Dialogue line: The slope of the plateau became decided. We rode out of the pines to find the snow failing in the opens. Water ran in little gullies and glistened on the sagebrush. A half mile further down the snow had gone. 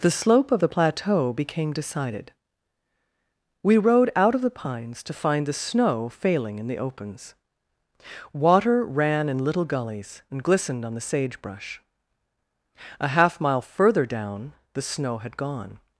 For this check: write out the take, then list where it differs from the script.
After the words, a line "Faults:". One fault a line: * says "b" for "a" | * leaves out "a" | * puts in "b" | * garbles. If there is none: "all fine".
The slope of the plateau became decided. We rode out of the pines to find the snow failing in the opens. Water ran in little gullies and glistened on the sagebrush. A half mile further down the snow had gone.
Faults:
all fine